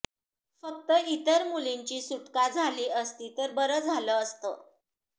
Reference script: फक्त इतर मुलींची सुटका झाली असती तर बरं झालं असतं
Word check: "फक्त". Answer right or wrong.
right